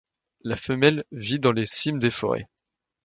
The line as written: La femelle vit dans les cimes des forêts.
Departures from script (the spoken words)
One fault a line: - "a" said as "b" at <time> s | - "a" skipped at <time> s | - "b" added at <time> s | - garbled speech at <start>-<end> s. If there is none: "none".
none